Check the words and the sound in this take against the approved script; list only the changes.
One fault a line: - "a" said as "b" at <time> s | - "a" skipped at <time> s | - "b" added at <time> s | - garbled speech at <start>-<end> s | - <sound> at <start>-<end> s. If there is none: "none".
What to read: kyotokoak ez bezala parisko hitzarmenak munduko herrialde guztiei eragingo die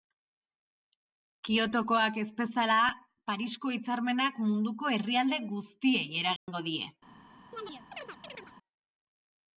- dropout at 6.4-6.5 s
- chirp at 7.5-8.5 s